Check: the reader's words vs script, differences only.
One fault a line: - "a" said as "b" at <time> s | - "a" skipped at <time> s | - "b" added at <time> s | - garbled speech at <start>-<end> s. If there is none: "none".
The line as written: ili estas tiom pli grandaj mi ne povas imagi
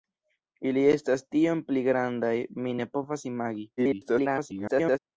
- garbled speech at 3.8-5.0 s